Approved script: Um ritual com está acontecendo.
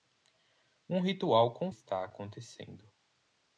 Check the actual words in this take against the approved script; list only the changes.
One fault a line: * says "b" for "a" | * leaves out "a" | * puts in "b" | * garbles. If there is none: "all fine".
all fine